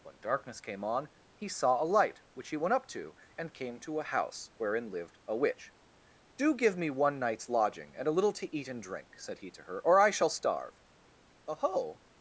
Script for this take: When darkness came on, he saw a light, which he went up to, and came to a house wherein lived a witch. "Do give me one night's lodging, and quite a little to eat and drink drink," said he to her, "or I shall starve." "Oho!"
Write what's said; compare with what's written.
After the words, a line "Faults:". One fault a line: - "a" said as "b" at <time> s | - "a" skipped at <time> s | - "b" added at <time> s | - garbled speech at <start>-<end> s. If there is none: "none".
When darkness came on, he saw a light, which he went up to, and came to a house wherein lived a witch. "Do give me one night's lodging, and a little to eat and drink," said he to her, "or I shall starve." "Oho!"
Faults:
- "quite" skipped at 8.1 s
- "drink" skipped at 9.2 s